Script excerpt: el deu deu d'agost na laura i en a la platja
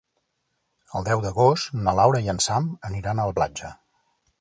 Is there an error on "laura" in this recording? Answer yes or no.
no